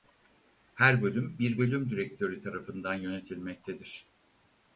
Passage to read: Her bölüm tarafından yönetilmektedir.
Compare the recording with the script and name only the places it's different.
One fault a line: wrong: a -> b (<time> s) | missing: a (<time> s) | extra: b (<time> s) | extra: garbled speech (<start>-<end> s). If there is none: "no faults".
extra: bir bölüm direktörü (1.4 s)